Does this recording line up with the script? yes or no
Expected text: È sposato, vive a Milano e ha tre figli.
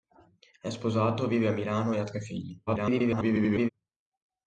no